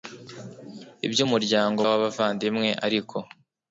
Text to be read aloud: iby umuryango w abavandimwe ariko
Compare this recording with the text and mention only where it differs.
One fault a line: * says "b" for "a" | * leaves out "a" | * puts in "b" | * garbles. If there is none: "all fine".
all fine